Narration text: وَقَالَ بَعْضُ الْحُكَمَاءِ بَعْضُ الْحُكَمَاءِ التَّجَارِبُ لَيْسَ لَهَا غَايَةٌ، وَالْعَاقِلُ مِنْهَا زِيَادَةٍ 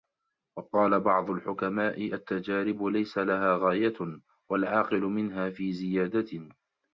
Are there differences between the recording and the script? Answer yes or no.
yes